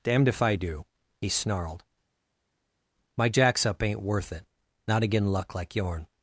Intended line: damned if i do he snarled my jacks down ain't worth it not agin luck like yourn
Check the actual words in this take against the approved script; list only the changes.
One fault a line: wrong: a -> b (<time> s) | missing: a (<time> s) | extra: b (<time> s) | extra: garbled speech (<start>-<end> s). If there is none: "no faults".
wrong: down -> up (3.7 s)